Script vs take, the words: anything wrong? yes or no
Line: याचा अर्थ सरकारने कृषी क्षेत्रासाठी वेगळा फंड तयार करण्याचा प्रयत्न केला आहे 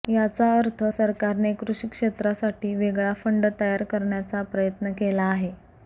no